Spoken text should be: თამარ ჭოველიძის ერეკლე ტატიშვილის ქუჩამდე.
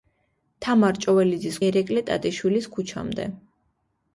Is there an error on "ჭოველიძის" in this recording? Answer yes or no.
no